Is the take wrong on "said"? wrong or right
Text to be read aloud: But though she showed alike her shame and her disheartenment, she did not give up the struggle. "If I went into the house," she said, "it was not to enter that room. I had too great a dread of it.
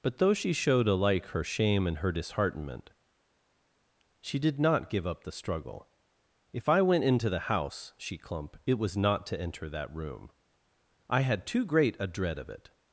wrong